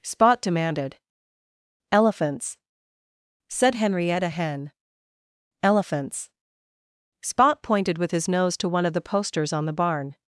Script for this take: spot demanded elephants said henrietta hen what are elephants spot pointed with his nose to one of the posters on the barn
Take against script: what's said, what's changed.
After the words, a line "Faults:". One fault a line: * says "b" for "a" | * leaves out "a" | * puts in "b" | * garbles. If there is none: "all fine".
spot demanded elephants said henrietta hen elephants spot pointed with his nose to one of the posters on the barn
Faults:
* leaves out "what are"